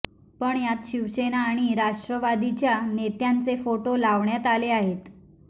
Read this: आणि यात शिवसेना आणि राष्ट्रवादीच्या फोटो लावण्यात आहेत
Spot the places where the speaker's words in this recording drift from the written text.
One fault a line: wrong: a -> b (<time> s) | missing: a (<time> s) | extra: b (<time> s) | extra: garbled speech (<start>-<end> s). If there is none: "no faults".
wrong: आणि -> पण (0.4 s)
extra: नेत्यांचे (2.9 s)
extra: आले (4.5 s)